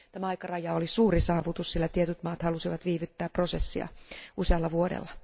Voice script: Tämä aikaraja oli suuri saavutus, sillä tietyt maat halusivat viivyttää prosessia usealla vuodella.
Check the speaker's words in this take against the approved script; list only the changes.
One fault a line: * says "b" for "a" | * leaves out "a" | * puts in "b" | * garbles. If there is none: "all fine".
all fine